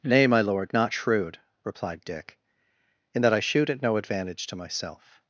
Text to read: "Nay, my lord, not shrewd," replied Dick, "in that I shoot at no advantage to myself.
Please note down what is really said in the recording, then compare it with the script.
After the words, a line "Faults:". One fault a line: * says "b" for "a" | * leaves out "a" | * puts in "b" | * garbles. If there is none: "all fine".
"Nay, my lord, not shrewd," replied Dick, "in that I shoot at no advantage to myself.
Faults:
all fine